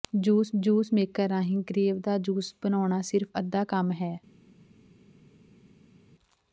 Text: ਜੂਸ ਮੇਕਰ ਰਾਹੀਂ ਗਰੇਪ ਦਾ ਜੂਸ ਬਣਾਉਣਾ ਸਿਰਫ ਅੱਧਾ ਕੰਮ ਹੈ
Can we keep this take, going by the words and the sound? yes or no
no